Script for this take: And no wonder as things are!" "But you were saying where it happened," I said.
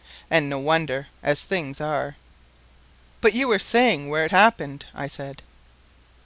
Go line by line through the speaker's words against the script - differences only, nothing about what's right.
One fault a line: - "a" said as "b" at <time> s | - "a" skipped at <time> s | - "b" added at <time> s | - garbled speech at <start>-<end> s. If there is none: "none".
none